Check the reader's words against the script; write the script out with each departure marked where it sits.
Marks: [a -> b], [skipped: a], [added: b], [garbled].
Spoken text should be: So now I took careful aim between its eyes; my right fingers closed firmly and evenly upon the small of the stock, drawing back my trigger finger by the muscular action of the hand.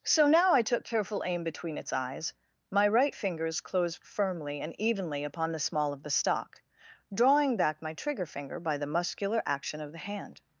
So now I took careful aim between its eyes; my right fingers closed firmly and evenly upon the small of the stock, drawing back my trigger finger by the muscular action of the hand.